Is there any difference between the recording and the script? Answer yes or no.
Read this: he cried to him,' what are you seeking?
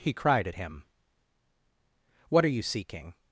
yes